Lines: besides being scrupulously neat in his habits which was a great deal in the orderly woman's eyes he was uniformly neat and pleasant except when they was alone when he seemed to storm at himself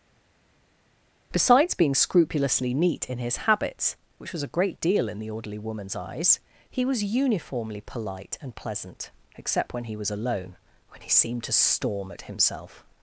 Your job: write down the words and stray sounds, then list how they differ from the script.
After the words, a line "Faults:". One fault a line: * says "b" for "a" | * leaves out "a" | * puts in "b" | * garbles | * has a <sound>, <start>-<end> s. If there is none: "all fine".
besides being scrupulously neat in his habits which was a great deal in the orderly woman's eyes he was uniformly polite and pleasant except when he was alone when he seemed to storm at himself
Faults:
* says "polite" for "neat"
* says "he" for "they"